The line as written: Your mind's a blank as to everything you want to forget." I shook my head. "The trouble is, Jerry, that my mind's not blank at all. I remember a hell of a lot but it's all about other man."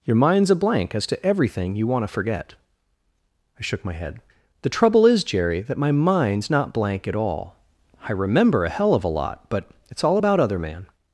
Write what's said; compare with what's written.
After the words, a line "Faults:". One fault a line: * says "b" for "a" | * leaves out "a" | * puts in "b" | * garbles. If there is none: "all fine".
Your mind's a blank as to everything you want to forget." I shook my head. "The trouble is, Jerry, that my mind's not blank at all. I remember a hell of a lot but it's all about other man."
Faults:
all fine